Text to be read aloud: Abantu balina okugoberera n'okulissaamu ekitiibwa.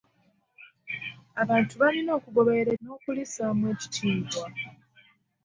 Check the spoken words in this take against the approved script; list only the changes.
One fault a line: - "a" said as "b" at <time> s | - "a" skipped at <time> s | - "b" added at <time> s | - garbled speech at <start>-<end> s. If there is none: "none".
none